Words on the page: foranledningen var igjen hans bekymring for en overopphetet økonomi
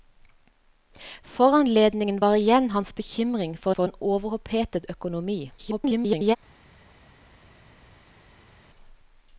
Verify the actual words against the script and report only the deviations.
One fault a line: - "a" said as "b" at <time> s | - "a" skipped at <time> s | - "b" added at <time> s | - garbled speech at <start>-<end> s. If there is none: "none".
- "for" added at 3.7 s
- garbled speech at 5.6-6.4 s